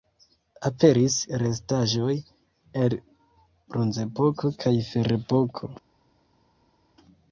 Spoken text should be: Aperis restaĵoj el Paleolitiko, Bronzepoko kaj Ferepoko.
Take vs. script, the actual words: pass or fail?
fail